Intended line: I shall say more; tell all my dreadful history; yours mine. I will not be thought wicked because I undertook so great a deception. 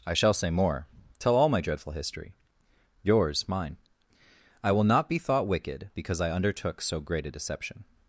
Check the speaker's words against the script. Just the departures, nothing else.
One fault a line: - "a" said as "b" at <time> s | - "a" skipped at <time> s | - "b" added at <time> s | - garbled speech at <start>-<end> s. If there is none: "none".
none